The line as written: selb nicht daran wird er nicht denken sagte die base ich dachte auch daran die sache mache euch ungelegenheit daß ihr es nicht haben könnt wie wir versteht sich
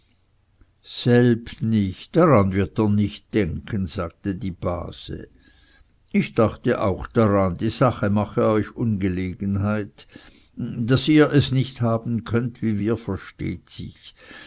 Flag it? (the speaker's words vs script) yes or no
no